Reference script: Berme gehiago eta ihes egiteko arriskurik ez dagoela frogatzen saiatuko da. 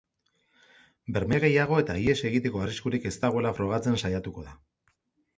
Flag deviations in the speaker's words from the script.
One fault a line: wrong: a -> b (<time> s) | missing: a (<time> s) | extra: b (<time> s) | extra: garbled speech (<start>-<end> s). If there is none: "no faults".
no faults